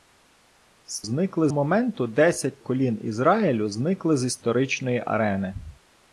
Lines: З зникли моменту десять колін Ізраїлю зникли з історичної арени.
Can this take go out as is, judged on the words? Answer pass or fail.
pass